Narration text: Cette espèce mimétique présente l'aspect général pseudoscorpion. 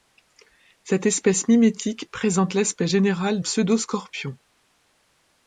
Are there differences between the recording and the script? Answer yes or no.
no